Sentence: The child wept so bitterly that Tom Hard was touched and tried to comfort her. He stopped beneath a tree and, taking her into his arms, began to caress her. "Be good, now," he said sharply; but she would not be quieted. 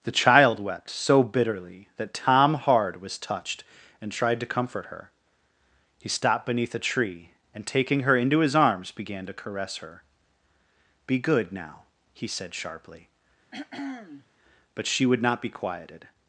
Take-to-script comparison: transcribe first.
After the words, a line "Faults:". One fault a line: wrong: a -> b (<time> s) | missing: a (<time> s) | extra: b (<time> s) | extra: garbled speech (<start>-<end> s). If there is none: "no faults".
The child wept so bitterly that Tom Hard was touched and tried to comfort her. He stopped beneath a tree and, taking her into his arms, began to caress her. "Be good, now," he said sharply; but she would not be quieted.
Faults:
no faults